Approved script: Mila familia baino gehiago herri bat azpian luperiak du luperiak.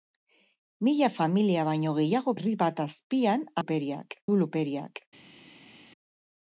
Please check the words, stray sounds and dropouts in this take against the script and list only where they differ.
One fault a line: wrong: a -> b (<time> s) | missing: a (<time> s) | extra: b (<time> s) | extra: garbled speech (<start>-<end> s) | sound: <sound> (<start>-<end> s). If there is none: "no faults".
no faults